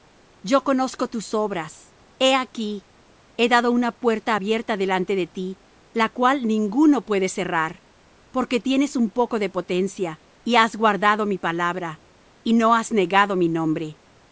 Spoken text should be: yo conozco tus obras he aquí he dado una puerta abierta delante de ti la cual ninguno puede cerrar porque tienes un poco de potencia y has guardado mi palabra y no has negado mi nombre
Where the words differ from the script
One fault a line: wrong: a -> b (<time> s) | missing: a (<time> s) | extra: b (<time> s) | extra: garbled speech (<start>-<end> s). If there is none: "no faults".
no faults